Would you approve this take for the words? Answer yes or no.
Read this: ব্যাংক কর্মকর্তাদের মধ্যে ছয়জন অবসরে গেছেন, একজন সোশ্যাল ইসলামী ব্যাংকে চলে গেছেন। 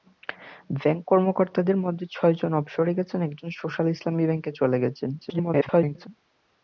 no